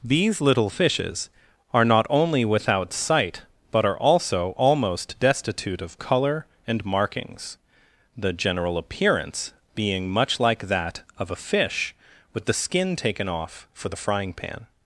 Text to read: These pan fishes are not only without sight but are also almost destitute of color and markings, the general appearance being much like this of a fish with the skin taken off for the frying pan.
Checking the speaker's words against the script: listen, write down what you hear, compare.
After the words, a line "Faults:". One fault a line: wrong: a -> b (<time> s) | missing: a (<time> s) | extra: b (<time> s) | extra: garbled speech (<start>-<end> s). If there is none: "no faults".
These little fishes are not only without sight but are also almost destitute of color and markings, the general appearance being much like that of a fish with the skin taken off for the frying pan.
Faults:
wrong: pan -> little (0.4 s)
wrong: this -> that (10.7 s)